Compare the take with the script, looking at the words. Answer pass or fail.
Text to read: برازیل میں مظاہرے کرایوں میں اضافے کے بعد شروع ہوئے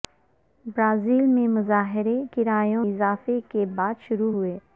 fail